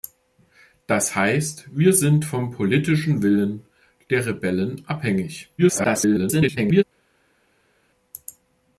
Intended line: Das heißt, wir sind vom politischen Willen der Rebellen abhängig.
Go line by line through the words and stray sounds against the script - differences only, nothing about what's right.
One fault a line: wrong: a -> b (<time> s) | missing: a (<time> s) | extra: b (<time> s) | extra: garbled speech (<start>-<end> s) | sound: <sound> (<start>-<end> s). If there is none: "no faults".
extra: garbled speech (5.6-6.8 s)